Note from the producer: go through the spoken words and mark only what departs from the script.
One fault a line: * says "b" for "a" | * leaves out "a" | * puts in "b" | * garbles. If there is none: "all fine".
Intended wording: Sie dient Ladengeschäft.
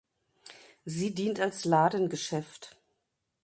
* puts in "als"